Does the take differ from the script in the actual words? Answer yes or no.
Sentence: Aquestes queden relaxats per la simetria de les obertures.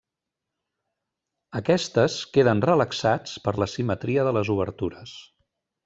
no